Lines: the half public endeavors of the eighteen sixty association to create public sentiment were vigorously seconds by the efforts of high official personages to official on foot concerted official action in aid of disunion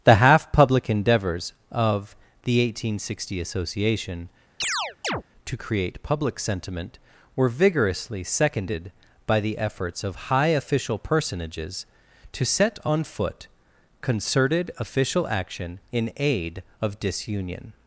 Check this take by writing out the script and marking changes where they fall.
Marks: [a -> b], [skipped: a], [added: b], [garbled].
the half public endeavors of the eighteen sixty association to create public sentiment were vigorously [seconds -> seconded] by the efforts of high official personages to [official -> set] on foot concerted official action in aid of disunion